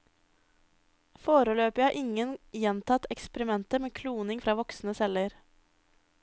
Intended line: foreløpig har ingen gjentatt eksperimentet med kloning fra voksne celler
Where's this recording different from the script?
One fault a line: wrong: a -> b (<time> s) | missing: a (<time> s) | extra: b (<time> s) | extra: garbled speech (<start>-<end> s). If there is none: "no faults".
no faults